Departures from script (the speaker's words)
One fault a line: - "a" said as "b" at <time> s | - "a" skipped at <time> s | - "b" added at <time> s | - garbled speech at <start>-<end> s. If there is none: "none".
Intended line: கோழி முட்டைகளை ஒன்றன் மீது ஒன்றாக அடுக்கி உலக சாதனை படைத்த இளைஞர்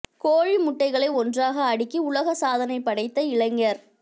- "ஒன்றன் மீது" skipped at 1.1 s